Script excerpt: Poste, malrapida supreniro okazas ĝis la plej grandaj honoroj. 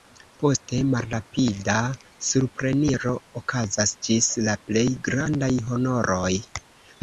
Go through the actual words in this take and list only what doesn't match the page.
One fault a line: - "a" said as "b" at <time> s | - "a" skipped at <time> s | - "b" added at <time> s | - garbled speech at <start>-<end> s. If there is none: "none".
none